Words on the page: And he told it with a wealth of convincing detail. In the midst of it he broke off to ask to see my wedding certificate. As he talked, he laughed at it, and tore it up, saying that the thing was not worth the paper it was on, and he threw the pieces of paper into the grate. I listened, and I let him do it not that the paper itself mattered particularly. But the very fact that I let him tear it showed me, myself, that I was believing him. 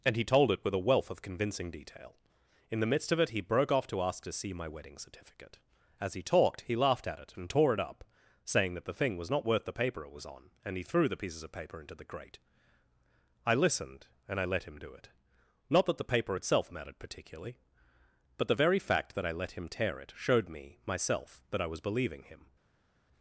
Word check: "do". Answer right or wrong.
right